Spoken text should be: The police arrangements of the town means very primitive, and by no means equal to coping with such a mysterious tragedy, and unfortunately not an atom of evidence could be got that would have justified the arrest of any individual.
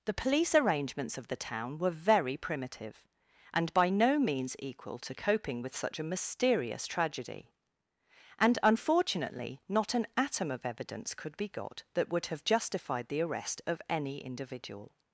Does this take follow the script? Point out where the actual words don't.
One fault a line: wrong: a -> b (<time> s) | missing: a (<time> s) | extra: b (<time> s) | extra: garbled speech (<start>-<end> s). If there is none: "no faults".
wrong: means -> were (1.8 s)